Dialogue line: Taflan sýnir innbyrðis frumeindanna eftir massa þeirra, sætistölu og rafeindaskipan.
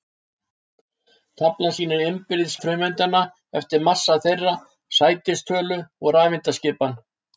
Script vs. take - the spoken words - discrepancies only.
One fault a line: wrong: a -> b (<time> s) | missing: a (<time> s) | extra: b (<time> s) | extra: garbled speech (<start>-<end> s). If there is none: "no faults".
no faults